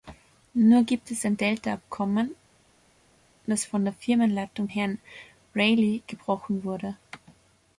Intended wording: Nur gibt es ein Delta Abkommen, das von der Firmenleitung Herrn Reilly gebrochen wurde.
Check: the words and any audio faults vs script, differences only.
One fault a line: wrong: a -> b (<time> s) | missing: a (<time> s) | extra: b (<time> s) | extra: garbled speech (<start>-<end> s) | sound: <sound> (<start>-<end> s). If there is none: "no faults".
no faults